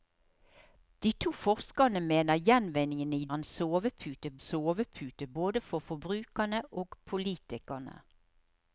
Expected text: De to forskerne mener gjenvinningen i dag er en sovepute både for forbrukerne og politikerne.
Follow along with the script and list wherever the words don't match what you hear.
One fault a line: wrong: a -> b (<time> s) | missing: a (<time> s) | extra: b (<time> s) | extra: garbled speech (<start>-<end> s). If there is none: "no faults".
missing: dag (3.3 s)
extra: sovepute (4.5 s)